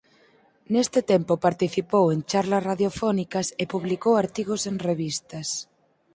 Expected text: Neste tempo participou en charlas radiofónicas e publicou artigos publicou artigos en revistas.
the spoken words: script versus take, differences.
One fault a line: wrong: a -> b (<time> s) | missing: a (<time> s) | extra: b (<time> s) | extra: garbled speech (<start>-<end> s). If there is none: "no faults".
missing: publicou artigos (4.6 s)